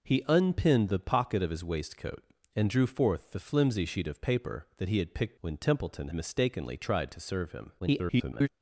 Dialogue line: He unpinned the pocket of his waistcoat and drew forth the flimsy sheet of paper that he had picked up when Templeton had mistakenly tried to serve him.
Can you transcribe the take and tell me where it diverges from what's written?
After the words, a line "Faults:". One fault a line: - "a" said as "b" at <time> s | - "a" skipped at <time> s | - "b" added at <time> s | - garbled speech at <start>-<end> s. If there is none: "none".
He unpinned the pocket of his waistcoat and drew forth the flimsy sheet of paper that he had picked when Templeton mistakenly tried to serve him. [garbled]
Faults:
- "up" skipped at 5.4 s
- "had" skipped at 6.1 s
- garbled speech at 7.8-8.5 s